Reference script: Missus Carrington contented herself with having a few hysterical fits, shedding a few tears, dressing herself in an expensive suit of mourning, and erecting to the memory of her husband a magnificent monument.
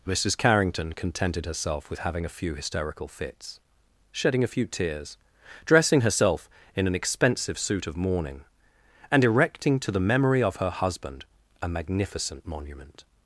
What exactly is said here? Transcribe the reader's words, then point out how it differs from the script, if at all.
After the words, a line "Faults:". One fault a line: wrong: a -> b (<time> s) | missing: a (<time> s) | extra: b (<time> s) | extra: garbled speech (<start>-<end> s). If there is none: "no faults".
Missus Carrington contented herself with having a few hysterical fits, shedding a few tears, dressing herself in an expensive suit of mourning, and erecting to the memory of her husband a magnificent monument.
Faults:
no faults